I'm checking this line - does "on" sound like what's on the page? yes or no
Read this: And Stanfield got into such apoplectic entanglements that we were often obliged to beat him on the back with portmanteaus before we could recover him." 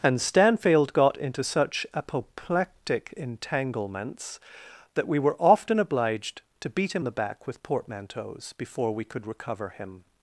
no